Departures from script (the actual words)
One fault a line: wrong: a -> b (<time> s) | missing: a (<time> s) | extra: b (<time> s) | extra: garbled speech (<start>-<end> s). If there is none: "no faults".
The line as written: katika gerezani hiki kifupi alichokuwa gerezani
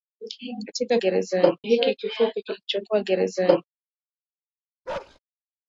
no faults